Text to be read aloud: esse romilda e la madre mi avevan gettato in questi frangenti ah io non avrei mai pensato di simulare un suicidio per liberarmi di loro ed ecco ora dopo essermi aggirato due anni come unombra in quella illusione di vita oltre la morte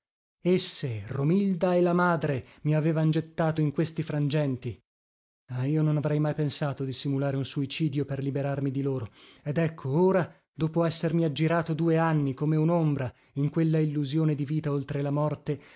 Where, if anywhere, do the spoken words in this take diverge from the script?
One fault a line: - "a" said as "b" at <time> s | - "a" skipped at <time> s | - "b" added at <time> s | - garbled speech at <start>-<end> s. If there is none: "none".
none